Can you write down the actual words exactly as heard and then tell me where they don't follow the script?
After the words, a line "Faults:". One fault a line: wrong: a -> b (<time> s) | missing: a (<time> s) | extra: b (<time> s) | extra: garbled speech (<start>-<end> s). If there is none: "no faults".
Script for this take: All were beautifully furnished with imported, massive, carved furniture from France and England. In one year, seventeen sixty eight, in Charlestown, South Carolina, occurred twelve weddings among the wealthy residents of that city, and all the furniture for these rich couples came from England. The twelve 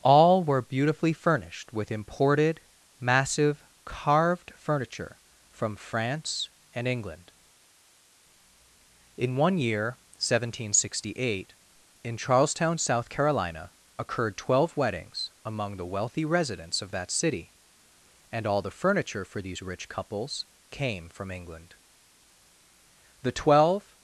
All were beautifully furnished with imported, massive, carved furniture from France and England. In one year, seventeen sixty eight, in Charlestown, South Carolina, occurred twelve weddings among the wealthy residents of that city, and all the furniture for these rich couples came from England. The twelve
Faults:
no faults